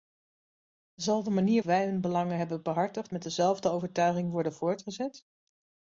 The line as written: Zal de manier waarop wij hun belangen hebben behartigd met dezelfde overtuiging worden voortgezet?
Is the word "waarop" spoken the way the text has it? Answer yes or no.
no